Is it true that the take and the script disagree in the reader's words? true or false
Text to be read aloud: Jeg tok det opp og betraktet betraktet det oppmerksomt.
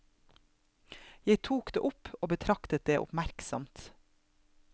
true